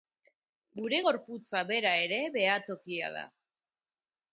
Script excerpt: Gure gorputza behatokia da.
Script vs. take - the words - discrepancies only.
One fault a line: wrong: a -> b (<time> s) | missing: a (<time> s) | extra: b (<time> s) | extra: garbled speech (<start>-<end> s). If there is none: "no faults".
extra: bera ere (1.7 s)